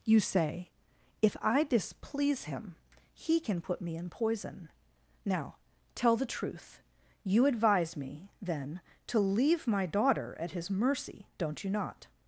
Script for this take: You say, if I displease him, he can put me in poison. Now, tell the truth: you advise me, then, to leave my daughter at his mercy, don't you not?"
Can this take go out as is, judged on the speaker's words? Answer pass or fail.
pass